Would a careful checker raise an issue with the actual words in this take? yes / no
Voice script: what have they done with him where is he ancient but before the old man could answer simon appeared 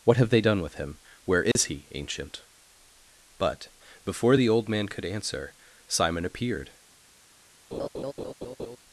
no